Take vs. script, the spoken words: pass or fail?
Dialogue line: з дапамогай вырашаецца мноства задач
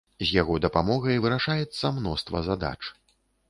fail